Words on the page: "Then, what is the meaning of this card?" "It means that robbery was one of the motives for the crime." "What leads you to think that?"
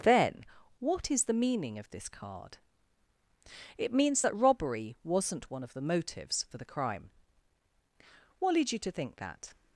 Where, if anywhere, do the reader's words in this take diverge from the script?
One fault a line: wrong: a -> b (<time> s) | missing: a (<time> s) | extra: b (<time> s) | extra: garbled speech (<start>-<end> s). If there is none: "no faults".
wrong: was -> wasn't (5.0 s)